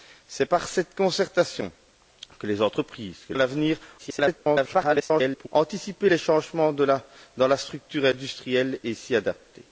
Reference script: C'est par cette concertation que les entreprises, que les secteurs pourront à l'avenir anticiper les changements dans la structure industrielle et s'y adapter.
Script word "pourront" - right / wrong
wrong